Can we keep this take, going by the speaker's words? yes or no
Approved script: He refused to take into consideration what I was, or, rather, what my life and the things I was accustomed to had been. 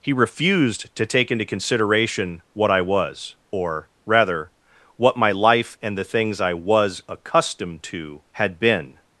yes